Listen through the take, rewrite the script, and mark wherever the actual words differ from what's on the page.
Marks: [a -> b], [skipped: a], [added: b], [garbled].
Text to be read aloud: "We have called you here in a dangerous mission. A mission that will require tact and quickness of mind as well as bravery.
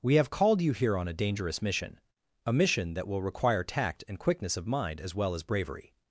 "We have called you here [in -> on] a dangerous mission. A mission that will require tact and quickness of mind as well as bravery.